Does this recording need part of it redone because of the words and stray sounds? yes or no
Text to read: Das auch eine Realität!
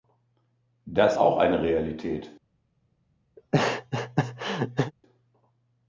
yes